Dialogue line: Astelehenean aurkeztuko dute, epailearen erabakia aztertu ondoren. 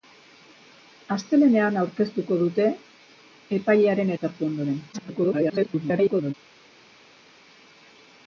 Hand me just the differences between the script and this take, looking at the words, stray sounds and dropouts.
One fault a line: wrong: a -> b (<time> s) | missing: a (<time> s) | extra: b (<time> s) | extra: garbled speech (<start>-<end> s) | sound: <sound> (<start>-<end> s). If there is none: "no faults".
missing: erabakia (4.1 s)
extra: garbled speech (4.9-6.3 s)